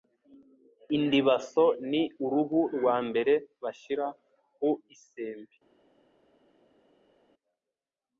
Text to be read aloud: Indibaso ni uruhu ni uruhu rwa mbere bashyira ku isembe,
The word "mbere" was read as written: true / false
true